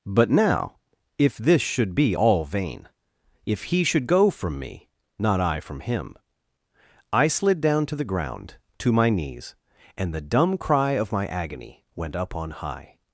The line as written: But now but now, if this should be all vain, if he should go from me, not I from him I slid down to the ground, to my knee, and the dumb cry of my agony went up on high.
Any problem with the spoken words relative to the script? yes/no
yes